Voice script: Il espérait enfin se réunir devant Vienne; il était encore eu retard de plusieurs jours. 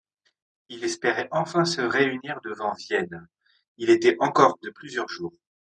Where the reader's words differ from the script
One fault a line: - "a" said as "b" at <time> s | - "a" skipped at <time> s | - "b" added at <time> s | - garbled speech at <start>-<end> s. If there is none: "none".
- "eu retard" skipped at 4.6 s